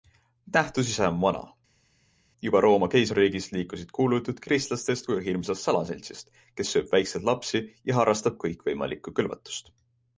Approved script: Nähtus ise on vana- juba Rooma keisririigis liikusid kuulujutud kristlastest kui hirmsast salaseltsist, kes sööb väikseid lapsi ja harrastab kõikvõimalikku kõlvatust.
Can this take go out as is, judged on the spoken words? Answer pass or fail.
pass